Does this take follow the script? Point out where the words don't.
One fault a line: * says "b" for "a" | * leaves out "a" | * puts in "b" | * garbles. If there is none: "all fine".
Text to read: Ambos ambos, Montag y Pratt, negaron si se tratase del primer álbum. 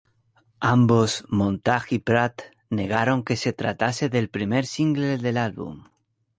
* leaves out "ambos"
* says "que" for "si"
* puts in "single del"